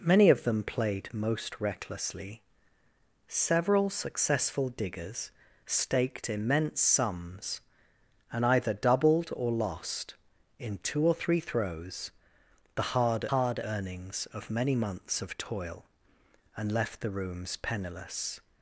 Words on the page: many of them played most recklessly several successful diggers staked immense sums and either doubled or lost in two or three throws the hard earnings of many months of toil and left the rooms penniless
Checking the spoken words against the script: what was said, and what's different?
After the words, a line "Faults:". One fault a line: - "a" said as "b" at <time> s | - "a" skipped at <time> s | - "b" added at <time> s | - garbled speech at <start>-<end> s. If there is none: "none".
many of them played most recklessly several successful diggers staked immense sums and either doubled or lost in two or three throws the hard hard earnings of many months of toil and left the rooms penniless
Faults:
- "hard" added at 13.3 s